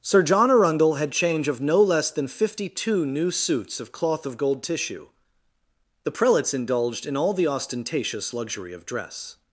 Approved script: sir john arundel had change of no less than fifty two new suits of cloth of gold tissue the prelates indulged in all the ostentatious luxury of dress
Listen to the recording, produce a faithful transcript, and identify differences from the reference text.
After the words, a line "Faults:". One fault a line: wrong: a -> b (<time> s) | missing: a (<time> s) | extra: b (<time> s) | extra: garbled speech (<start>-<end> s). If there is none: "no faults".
sir john arundel had change of no less than fifty two new suits of cloth of gold tissue the prelates indulged in all the ostentatious luxury of dress
Faults:
no faults